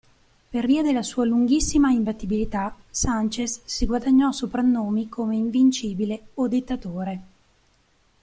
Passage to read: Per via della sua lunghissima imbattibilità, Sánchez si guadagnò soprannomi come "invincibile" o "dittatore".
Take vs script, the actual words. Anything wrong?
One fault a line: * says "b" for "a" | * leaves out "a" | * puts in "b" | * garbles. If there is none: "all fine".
all fine